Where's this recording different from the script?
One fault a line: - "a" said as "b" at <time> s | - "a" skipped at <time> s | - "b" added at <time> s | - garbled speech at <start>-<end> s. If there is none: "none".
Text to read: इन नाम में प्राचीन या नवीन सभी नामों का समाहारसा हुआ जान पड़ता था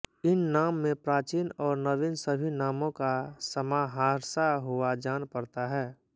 - "या" said as "और" at 1.6 s
- "था" said as "है" at 5.7 s